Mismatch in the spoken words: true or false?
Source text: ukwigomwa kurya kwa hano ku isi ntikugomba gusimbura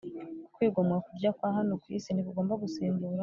false